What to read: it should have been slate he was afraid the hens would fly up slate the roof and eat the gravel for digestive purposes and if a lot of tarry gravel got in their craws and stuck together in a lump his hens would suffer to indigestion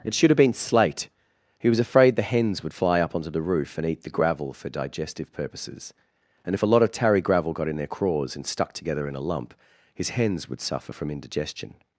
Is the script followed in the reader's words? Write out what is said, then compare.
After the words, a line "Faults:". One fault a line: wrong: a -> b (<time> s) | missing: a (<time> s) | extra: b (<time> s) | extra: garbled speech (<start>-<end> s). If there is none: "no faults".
it should have been slate he was afraid the hens would fly up onto the roof and eat the gravel for digestive purposes and if a lot of tarry gravel got in their craws and stuck together in a lump his hens would suffer from indigestion
Faults:
wrong: slate -> onto (3.2 s)
wrong: to -> from (10.9 s)